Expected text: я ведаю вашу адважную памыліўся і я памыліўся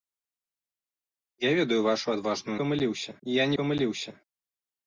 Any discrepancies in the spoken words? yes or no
no